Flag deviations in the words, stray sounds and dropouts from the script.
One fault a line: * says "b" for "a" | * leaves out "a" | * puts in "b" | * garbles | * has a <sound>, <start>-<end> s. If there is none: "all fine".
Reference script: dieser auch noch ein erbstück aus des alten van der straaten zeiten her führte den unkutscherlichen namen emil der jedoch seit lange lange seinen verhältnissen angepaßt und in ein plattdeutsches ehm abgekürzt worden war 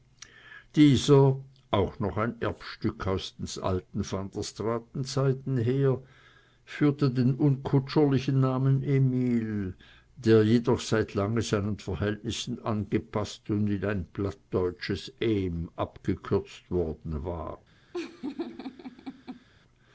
* leaves out "lange"
* has a laugh, 17.9-19.5 s